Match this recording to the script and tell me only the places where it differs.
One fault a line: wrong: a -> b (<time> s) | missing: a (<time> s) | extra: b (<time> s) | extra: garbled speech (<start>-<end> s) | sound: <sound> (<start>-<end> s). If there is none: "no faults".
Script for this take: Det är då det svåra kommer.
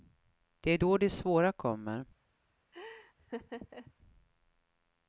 sound: laugh (2.7-3.9 s)